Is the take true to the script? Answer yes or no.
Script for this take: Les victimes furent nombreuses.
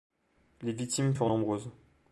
yes